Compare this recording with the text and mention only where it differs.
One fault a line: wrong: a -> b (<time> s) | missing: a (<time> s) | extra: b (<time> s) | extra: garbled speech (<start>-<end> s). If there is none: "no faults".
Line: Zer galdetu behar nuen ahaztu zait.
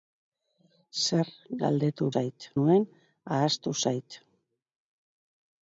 wrong: behar -> zait (2.1 s)